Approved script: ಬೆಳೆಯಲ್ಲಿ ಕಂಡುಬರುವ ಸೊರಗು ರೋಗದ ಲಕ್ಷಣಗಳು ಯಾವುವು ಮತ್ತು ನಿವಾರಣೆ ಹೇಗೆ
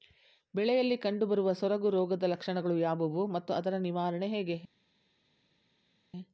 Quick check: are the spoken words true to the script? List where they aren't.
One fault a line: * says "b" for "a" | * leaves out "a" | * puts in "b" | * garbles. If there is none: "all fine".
* puts in "ಅದರ"